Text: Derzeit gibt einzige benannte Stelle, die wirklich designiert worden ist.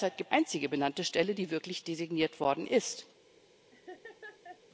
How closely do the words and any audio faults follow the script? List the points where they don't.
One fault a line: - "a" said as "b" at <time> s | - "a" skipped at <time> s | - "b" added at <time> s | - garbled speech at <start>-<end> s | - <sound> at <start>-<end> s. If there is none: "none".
- laugh at 3.7-4.6 s